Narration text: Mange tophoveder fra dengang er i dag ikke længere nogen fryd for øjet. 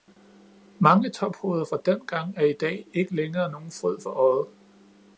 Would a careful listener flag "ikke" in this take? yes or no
no